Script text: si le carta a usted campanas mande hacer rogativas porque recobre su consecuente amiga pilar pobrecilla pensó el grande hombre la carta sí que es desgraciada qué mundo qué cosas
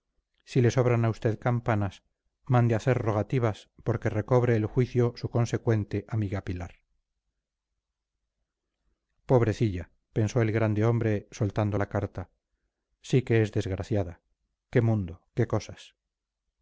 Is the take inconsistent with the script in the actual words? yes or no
yes